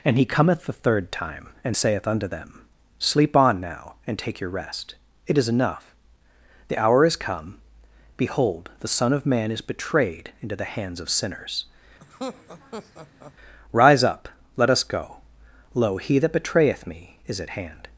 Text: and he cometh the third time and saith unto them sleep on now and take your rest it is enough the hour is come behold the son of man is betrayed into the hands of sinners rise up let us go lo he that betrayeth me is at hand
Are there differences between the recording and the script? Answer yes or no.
no